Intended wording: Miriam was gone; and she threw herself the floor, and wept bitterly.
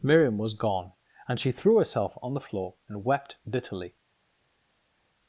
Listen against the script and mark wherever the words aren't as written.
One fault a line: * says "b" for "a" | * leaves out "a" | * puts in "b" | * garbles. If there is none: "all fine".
* puts in "on"